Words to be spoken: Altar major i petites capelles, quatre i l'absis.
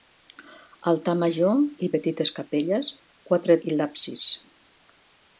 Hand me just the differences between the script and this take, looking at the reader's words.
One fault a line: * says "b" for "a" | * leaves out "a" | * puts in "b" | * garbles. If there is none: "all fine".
all fine